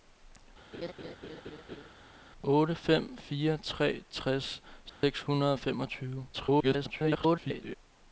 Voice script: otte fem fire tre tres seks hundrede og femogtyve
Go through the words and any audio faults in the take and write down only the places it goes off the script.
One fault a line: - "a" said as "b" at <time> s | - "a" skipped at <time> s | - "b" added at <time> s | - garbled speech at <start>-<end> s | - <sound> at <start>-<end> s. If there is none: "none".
- laugh at 0.7-1.9 s
- dropout at 4.9-5.0 s
- garbled speech at 6.3-7.7 s